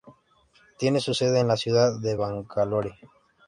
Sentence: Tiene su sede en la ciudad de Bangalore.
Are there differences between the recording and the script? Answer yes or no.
no